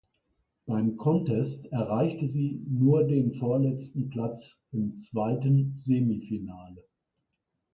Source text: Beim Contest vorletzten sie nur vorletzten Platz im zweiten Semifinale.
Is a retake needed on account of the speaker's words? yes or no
yes